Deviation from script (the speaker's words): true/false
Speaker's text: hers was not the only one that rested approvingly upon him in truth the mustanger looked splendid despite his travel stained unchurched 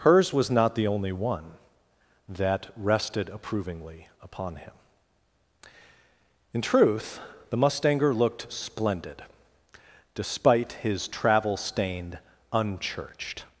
false